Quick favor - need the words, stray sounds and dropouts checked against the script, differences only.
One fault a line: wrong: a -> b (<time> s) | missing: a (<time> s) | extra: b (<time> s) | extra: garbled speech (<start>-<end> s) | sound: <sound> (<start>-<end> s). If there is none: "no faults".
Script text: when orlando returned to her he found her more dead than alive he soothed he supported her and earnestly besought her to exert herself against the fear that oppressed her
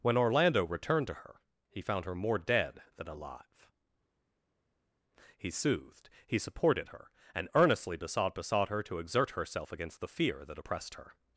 extra: besought (8.3 s)